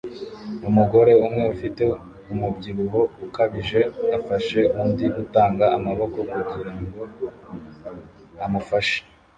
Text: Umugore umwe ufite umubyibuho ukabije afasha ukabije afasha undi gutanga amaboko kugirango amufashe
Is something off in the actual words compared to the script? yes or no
yes